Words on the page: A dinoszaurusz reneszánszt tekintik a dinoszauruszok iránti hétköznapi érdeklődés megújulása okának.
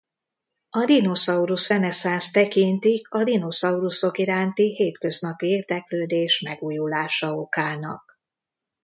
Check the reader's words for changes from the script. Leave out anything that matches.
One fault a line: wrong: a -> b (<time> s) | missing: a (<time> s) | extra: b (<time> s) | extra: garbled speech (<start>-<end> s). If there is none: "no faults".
no faults